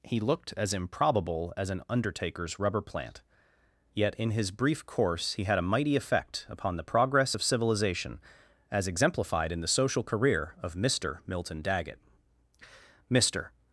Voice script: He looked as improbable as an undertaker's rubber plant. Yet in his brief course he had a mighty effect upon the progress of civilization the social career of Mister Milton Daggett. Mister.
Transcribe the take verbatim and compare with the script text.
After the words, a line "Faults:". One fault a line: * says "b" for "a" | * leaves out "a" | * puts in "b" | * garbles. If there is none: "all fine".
He looked as improbable as an undertaker's rubber plant. Yet in his brief course he had a mighty effect upon the progress of civilization as exemplified in the social career of Mister Milton Daggett. Mister.
Faults:
* puts in "as exemplified in"